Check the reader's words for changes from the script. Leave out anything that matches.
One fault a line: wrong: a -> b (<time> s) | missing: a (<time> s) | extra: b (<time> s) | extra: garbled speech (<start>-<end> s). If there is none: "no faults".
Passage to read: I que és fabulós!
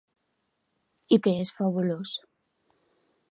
no faults